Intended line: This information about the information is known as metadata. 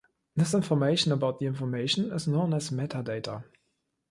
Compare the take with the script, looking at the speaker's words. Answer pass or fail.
pass